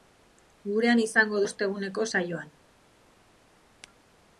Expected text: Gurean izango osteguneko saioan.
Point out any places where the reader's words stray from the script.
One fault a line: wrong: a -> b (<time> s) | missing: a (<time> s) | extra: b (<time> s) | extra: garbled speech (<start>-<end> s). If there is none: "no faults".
no faults